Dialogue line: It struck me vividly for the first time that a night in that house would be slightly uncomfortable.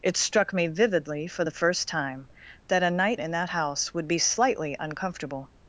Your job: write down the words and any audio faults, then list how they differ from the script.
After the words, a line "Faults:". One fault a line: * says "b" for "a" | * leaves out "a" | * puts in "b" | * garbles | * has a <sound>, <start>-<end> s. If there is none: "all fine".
It struck me vividly for the first time that a night in that house would be slightly uncomfortable.
Faults:
all fine